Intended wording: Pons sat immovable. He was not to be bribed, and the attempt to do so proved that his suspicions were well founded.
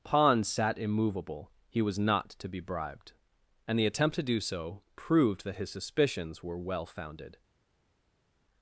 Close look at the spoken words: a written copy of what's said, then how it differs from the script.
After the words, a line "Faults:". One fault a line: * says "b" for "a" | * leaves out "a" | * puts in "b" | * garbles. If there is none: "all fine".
Pons sat immovable. He was not to be bribed, and the attempt to do so proved that his suspicions were well founded.
Faults:
all fine